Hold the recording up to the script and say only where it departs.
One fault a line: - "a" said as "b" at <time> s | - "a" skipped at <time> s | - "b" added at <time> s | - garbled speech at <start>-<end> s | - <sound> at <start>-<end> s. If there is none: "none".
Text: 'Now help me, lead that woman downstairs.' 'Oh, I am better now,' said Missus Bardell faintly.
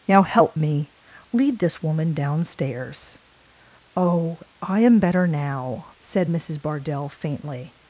- "that" said as "this" at 1.6 s